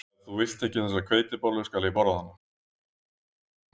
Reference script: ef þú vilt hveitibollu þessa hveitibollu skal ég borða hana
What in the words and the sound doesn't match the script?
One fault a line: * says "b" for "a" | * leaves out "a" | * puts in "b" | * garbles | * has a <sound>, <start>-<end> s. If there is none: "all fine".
* says "ekki" for "hveitibollu"